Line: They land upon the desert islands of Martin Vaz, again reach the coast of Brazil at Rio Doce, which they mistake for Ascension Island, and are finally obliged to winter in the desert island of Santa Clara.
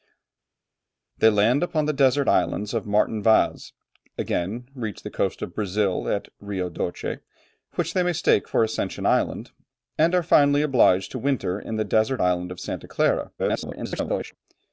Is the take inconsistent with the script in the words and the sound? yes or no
yes